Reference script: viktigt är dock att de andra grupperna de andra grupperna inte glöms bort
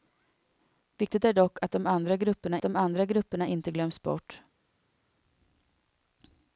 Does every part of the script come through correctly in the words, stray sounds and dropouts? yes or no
yes